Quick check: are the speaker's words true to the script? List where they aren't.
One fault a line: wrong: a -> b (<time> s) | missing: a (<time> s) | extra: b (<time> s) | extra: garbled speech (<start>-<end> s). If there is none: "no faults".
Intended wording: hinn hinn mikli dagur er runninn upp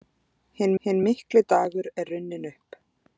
no faults